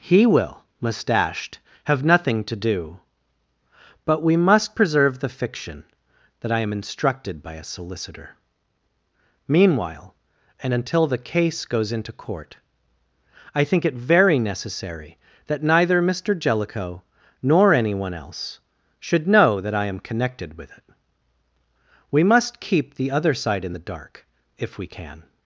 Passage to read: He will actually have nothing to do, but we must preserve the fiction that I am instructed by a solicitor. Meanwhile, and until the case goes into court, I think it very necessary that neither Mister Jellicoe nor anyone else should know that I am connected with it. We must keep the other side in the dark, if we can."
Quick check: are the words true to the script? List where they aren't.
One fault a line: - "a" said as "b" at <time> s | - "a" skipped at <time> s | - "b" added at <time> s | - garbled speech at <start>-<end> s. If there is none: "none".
- "actually" said as "mustached" at 0.8 s